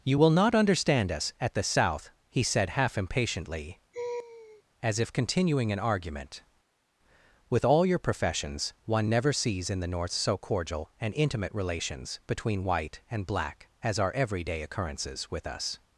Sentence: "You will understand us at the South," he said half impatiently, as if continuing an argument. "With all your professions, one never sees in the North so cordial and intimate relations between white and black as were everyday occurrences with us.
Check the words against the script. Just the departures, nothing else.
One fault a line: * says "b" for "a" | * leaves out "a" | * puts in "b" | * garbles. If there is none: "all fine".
* puts in "not"
* says "are" for "were"